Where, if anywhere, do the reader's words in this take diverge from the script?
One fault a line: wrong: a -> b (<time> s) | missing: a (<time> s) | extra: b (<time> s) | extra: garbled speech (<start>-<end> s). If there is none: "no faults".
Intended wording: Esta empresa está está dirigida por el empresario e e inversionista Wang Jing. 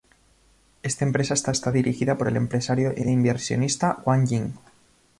no faults